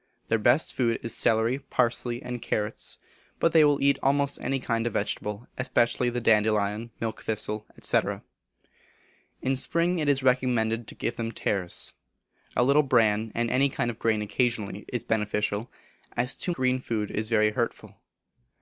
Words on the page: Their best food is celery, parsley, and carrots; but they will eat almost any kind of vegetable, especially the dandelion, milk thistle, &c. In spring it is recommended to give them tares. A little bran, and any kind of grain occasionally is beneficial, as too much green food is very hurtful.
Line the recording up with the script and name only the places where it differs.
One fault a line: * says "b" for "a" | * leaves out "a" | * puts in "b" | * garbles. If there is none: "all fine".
* leaves out "much"